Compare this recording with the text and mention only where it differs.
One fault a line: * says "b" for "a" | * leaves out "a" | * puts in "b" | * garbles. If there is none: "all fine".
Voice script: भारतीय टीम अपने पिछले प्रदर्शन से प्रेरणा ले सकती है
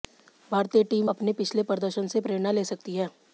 all fine